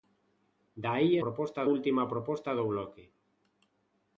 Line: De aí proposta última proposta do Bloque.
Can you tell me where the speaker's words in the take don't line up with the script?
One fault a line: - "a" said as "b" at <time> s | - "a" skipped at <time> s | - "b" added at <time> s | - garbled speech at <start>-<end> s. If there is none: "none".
none